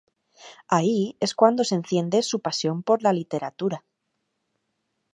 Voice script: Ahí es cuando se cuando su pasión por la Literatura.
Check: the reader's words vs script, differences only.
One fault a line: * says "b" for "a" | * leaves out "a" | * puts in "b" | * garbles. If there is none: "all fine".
* says "enciende" for "cuando"